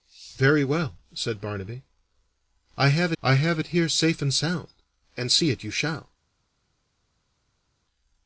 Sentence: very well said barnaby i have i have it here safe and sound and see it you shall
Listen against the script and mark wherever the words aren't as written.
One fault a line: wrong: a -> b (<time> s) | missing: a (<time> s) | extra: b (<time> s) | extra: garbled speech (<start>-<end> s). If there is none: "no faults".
no faults